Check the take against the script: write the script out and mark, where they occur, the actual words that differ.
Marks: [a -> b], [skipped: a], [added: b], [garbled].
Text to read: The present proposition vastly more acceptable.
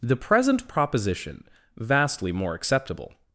The present proposition vastly more acceptable.